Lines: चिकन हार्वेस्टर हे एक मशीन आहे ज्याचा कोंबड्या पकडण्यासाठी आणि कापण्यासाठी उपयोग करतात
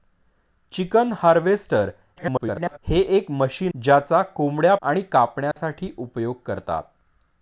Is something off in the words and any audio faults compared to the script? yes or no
yes